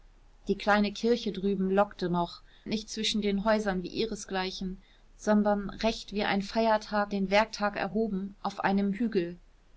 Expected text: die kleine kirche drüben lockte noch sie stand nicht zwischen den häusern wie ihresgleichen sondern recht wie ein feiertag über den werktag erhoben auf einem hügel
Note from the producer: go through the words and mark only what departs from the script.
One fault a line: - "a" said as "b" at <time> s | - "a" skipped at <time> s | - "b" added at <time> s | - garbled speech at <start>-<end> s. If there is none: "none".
- "sie stand" skipped at 2.4 s
- "über" skipped at 7.1 s